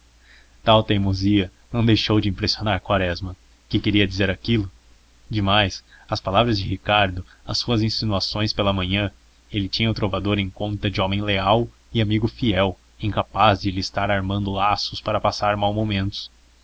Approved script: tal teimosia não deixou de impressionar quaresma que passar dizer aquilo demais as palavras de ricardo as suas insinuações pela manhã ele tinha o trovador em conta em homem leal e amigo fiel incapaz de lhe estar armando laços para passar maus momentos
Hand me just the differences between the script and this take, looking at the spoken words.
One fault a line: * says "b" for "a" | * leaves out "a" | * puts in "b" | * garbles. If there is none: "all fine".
* says "queria" for "passar"
* says "de" for "em"